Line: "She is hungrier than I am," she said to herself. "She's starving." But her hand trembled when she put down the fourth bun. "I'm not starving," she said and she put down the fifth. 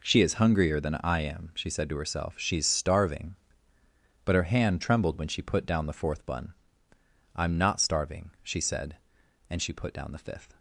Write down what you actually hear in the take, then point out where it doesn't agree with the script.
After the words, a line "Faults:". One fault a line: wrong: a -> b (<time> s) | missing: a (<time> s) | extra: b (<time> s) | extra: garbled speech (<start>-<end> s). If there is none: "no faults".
"She is hungrier than I am," she said to herself. "She's starving." But her hand trembled when she put down the fourth bun. "I'm not starving," she said and she put down the fifth.
Faults:
no faults